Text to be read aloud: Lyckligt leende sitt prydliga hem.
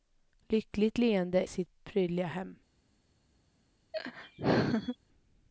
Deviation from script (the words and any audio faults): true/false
true